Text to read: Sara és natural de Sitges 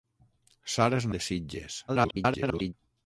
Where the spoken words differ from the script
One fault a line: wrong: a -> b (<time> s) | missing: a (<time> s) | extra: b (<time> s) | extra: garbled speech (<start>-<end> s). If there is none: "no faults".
missing: natural (1.1 s)
extra: garbled speech (1.9-2.7 s)